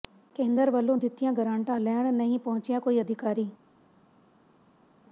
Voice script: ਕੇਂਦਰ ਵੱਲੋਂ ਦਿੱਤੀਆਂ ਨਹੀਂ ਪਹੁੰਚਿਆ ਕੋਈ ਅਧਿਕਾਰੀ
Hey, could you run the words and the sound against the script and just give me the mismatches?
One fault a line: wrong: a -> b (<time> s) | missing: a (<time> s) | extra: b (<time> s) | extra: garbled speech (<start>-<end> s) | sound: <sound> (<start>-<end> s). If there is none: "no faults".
extra: ਗਰਾਂਟਾਂ ਲੈਣ (1.3 s)